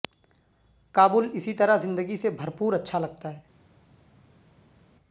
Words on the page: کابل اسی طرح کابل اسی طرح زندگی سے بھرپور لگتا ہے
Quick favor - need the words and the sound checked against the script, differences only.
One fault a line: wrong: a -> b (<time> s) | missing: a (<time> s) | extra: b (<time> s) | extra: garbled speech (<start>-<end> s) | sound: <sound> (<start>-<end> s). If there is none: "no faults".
missing: کابل اسی طرح (1.8 s)
extra: اچھا (2.7 s)